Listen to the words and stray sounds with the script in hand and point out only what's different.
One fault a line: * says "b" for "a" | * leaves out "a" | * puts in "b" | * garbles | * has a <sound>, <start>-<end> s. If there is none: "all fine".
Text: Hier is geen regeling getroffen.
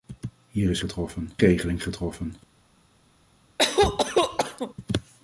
* says "getroffen" for "geen"
* has a cough, 3.6-4.7 s